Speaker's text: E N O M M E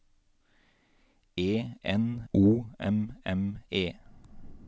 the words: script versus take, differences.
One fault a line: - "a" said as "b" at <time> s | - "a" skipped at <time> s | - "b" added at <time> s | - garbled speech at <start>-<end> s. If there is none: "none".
none